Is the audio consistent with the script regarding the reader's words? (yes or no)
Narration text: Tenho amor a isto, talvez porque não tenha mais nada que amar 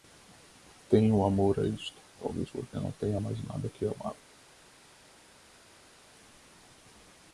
yes